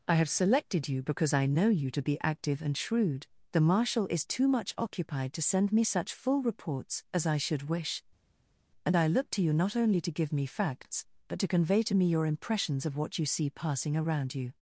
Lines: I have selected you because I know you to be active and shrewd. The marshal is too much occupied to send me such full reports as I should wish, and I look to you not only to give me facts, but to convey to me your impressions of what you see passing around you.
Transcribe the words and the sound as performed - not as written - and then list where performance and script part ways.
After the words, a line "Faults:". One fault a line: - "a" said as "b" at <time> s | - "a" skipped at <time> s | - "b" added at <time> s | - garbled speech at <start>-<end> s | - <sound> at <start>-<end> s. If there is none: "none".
I have selected you because I know you to be active and shrewd. The marshal is too much occupied to send me such full reports as I should wish, and I look to you not only to give me facts, but to convey to me your impressions of what you see passing around you.
Faults:
none